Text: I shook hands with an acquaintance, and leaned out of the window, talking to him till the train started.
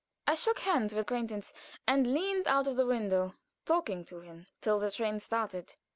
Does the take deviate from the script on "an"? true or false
true